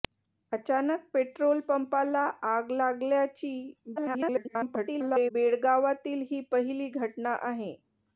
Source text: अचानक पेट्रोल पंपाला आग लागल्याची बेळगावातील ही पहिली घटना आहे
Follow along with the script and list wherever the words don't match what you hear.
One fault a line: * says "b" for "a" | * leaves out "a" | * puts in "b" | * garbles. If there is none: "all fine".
* garbles